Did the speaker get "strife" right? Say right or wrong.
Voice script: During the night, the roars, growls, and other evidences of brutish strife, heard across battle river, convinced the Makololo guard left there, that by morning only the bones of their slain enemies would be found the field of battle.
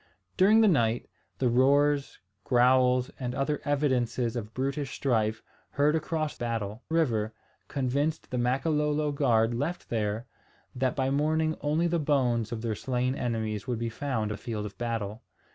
right